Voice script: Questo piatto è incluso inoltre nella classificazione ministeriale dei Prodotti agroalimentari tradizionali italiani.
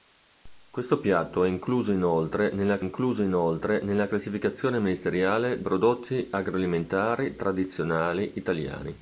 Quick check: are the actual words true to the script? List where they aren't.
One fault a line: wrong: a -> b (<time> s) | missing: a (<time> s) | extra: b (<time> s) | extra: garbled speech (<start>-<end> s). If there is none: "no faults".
extra: incluso inoltre nella (2.8 s)
missing: dei (5.6 s)